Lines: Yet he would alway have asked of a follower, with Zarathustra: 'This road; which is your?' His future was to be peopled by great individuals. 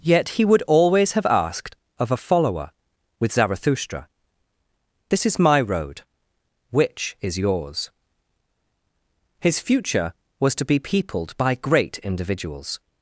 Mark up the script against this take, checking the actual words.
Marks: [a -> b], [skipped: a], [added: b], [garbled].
Yet he would [alway -> always] have asked of a follower, with Zarathustra: 'This [added: is my] road; which is [your?' -> yours] His future was to be peopled by great individuals.